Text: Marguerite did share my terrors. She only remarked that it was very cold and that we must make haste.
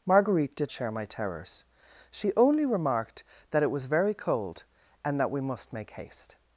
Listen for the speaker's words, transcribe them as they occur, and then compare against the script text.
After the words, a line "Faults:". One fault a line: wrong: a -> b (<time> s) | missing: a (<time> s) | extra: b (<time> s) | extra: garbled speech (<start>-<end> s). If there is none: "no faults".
Marguerite did share my terrors. She only remarked that it was very cold and that we must make haste.
Faults:
no faults